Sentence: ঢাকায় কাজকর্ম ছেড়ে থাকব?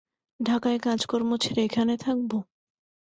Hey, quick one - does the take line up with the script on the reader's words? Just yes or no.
no